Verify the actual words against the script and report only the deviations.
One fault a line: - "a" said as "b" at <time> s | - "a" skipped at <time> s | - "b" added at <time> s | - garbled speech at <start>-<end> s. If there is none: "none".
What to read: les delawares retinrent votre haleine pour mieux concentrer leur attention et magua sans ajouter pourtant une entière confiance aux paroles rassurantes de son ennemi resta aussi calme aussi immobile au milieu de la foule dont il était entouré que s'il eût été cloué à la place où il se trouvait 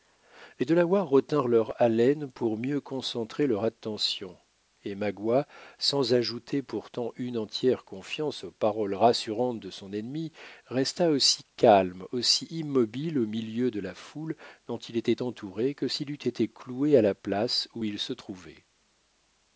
- "votre" said as "leur" at 1.5 s